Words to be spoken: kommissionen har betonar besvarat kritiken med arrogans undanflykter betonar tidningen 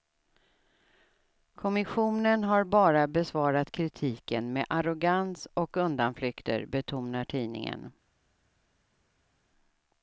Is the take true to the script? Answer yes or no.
no